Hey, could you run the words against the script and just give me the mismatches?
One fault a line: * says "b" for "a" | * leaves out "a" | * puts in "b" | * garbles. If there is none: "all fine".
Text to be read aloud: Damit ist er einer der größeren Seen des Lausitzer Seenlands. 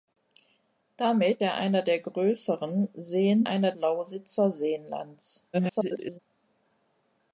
* leaves out "ist"
* says "einer" for "des"
* garbles